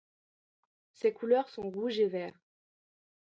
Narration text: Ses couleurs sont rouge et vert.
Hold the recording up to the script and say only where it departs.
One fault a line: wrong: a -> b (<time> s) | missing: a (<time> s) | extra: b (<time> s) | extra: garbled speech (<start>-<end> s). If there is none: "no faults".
no faults